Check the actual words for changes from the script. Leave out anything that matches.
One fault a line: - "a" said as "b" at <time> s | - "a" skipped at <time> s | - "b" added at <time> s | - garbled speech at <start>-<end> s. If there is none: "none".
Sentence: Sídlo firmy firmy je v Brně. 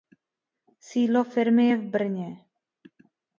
- "firmy" skipped at 1.7 s